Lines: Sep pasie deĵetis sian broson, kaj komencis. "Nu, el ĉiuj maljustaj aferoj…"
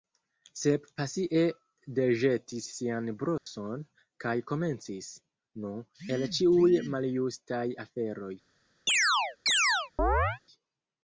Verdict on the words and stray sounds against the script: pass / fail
fail